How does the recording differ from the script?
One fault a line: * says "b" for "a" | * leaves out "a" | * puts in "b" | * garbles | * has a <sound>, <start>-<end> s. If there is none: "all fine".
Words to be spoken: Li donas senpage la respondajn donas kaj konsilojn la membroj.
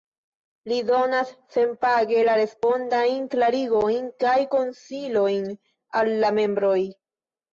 * says "klarigojn" for "donas"
* puts in "al"